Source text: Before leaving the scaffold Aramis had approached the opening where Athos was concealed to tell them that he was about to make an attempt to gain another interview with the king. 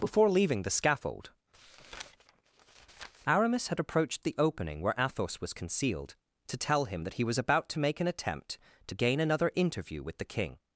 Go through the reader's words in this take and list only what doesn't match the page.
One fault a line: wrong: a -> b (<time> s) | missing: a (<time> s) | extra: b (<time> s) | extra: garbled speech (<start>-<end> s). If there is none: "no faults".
wrong: them -> him (6.8 s)